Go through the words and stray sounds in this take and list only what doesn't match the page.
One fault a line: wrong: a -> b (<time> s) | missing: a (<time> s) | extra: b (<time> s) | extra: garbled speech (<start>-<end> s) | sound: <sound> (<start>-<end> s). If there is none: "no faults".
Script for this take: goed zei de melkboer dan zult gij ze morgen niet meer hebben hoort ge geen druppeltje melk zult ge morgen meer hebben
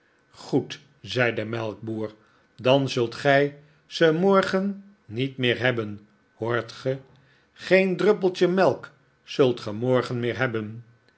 no faults